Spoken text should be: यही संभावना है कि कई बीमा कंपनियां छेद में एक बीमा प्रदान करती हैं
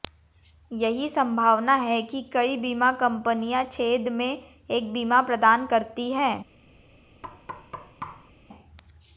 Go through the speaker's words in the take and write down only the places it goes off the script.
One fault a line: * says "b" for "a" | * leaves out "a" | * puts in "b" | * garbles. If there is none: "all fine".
all fine